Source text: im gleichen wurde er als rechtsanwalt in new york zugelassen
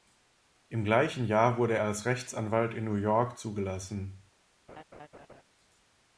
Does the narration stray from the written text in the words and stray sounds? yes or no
yes